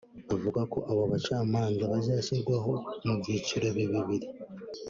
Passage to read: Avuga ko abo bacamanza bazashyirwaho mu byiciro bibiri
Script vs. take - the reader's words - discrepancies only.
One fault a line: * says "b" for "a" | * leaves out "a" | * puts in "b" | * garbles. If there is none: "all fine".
all fine